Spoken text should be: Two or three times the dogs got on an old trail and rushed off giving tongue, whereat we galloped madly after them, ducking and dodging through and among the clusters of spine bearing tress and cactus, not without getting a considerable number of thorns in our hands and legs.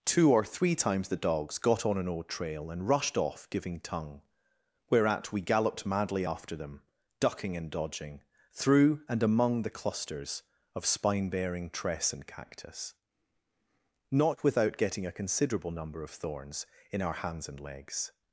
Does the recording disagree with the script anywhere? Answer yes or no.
no